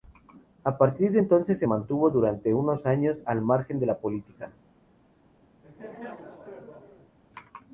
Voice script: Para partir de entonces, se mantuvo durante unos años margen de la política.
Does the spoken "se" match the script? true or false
true